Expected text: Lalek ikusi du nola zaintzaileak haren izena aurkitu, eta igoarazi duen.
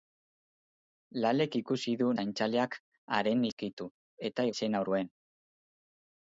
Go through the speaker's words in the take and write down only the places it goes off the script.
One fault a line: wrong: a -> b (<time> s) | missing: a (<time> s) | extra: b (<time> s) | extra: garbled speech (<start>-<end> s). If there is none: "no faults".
missing: nola (2.1 s)
missing: izena (3.5 s)
wrong: igoarazi -> izena (4.5 s)